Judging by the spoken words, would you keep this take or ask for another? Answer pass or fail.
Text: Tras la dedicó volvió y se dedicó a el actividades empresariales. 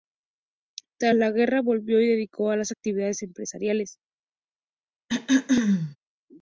fail